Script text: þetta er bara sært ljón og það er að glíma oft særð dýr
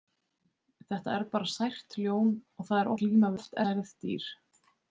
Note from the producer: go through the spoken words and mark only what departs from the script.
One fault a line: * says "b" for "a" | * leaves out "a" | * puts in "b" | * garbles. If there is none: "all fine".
all fine